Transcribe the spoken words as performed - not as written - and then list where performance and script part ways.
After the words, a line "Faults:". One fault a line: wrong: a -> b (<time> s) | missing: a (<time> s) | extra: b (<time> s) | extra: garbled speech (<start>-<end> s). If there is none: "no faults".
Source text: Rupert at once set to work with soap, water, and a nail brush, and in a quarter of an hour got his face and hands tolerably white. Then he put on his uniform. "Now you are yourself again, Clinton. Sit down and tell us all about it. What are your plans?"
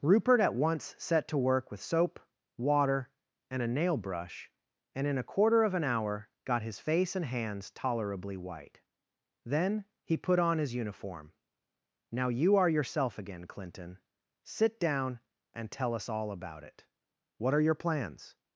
Rupert at once set to work with soap, water, and a nail brush, and in a quarter of an hour got his face and hands tolerably white. Then he put on his uniform. "Now you are yourself again, Clinton. Sit down and tell us all about it. What are your plans?"
Faults:
no faults